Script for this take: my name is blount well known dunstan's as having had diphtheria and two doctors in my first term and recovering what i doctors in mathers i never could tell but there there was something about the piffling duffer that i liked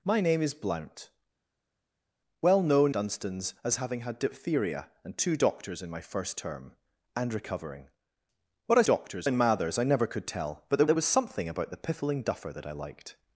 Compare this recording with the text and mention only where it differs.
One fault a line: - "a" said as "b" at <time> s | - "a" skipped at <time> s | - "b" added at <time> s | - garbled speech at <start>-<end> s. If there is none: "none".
none